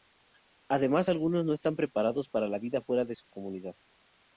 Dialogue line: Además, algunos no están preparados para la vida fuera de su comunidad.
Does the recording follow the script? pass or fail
pass